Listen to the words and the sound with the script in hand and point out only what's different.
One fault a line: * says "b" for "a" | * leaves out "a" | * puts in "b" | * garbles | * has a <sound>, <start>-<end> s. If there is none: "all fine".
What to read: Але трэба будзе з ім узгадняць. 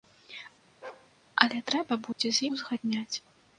* has a bark, 0.8-1.1 s
* has a dropout, 2.1-2.2 s
* leaves out "ім"